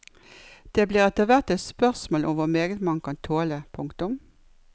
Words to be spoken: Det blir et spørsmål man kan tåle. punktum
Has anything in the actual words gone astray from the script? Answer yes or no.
yes